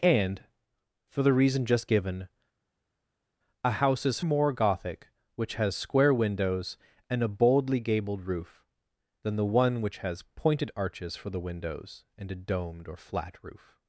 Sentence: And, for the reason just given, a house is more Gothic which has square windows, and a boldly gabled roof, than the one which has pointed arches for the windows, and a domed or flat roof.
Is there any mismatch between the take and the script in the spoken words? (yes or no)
no